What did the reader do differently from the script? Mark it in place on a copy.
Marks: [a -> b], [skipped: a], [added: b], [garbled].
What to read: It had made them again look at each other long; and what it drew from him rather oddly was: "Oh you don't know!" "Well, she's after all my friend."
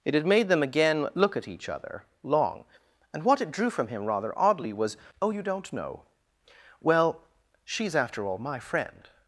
It had made them again look at each other long; and what it drew from him rather oddly was: "Oh you don't know!" "Well, she's after all my friend."